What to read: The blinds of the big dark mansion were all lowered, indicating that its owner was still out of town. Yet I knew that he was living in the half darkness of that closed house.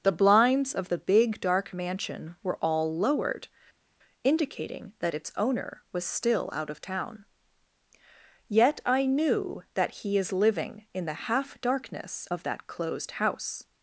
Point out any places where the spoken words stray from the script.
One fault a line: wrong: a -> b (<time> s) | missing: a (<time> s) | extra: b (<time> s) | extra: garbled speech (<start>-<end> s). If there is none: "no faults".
wrong: was -> is (10.2 s)